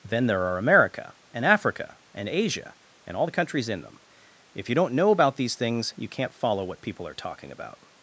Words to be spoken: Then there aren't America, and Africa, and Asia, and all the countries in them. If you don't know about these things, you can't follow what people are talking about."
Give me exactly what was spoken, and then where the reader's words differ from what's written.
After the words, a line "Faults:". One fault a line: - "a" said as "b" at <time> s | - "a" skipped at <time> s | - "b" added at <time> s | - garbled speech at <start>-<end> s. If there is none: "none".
Then there are America, and Africa, and Asia, and all the countries in them. If you don't know about these things, you can't follow what people are talking about."
Faults:
- "aren't" said as "are" at 0.5 s